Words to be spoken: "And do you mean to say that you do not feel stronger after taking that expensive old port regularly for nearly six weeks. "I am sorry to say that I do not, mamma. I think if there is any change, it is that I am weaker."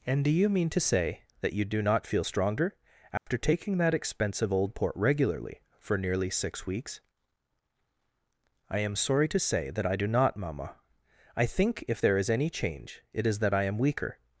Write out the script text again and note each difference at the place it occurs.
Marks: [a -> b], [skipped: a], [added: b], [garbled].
"And do you mean to say that you do not feel stronger after taking that expensive old port regularly for nearly six weeks. "I am sorry to say that I do not, mamma. I think if there is any change, it is that I am weaker."